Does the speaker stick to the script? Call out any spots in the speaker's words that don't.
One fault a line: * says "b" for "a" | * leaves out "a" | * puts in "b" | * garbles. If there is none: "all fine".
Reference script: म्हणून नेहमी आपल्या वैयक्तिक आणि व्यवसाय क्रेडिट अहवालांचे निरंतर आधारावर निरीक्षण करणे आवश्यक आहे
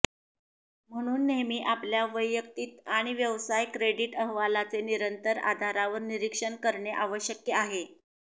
all fine